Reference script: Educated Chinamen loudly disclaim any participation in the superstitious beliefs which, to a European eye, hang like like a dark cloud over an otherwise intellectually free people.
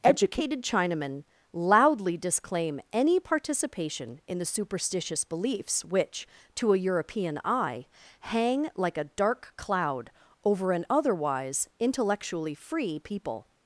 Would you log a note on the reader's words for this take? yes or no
yes